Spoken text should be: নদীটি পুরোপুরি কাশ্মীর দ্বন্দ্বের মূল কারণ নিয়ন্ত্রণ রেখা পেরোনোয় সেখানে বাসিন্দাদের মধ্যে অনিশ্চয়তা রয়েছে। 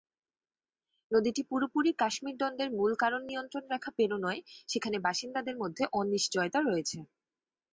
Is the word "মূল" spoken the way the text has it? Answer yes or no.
yes